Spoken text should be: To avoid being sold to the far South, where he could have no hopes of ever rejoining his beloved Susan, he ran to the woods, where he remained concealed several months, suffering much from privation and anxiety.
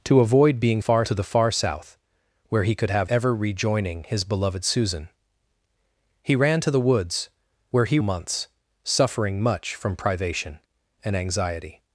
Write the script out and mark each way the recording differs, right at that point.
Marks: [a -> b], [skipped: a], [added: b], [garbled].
To avoid being [sold -> far] to the far South, where he could have [skipped: no hopes of] ever rejoining his beloved Susan, he ran to the woods, where he [skipped: remained concealed several] months, suffering much from privation and anxiety.